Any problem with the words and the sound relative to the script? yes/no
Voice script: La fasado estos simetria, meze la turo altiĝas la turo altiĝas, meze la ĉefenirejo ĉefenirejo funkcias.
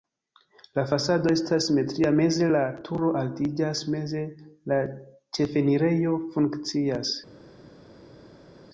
yes